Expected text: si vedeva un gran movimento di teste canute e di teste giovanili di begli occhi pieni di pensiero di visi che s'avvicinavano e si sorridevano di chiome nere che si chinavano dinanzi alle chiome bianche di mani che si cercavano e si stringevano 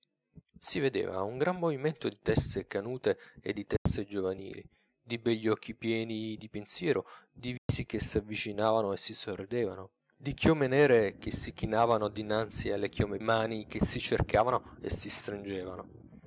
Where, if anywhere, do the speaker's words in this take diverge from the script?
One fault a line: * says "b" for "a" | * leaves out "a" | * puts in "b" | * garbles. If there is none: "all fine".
* leaves out "bianche di"